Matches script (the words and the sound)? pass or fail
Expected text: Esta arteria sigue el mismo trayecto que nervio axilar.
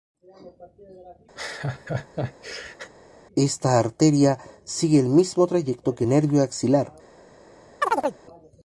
fail